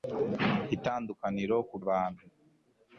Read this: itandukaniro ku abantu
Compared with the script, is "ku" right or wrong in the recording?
right